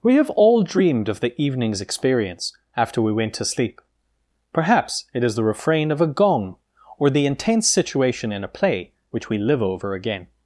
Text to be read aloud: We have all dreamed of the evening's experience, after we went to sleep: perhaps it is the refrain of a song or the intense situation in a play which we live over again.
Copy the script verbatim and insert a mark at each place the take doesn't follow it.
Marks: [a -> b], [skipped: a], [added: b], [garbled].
We have all dreamed of the evening's experience, after we went to sleep: perhaps it is the refrain of a [song -> gong] or the intense situation in a play which we live over again.